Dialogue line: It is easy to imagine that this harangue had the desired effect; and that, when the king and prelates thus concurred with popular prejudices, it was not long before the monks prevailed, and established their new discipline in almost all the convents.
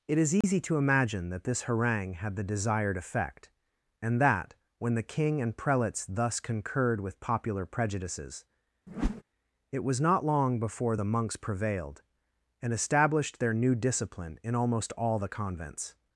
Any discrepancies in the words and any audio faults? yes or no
yes